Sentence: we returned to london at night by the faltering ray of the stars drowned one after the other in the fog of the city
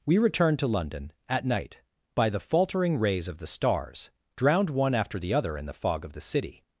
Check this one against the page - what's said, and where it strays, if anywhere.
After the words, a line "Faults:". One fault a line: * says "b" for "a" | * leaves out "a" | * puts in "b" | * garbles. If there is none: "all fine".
we returned to london at night by the faltering rays of the stars drowned one after the other in the fog of the city
Faults:
* says "rays" for "ray"